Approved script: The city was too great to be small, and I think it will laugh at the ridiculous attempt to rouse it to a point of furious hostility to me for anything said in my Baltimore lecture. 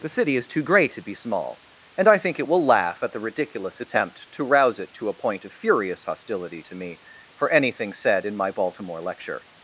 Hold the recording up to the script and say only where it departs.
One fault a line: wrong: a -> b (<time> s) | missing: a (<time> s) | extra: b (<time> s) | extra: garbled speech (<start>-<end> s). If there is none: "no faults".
wrong: was -> is (0.3 s)